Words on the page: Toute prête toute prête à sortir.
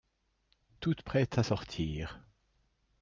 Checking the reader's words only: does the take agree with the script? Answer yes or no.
no